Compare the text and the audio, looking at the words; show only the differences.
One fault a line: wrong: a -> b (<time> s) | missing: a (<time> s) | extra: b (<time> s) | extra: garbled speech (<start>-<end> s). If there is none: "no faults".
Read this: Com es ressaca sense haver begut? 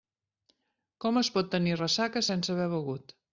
extra: pot tenir (1.4 s)